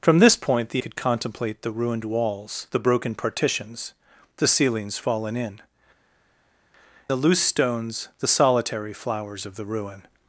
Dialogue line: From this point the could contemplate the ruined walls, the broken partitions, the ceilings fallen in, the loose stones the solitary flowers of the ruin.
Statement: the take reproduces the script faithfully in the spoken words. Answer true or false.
true